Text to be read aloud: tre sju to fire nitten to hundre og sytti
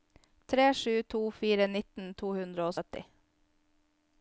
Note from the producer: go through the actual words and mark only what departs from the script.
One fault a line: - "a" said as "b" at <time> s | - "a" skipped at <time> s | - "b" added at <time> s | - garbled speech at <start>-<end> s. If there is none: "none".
none